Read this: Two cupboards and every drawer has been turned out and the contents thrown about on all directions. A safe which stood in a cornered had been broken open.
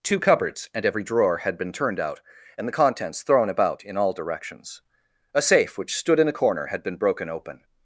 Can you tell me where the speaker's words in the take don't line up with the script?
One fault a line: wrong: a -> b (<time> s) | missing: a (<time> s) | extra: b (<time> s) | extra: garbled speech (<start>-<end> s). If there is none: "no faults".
wrong: has -> had (1.4 s)
wrong: on -> in (3.8 s)
wrong: cornered -> corner (6.3 s)